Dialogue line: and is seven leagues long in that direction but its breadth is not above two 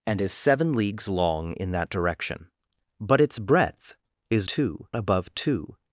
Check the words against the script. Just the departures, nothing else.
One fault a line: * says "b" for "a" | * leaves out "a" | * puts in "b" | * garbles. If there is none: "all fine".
* says "two" for "not"